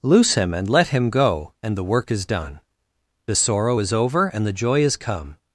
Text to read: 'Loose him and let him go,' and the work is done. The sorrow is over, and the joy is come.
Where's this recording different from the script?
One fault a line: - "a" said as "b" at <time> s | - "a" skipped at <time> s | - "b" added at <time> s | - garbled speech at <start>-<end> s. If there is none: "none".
none